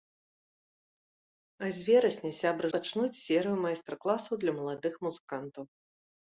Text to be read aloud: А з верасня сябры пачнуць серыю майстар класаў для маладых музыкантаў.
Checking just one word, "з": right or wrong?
right